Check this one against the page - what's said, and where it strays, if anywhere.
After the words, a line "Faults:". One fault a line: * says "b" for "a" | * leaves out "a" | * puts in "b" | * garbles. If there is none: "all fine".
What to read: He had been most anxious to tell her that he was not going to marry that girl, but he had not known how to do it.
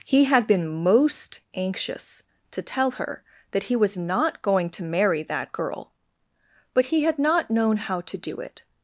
He had been most anxious to tell her that he was not going to marry that girl, but he had not known how to do it.
Faults:
all fine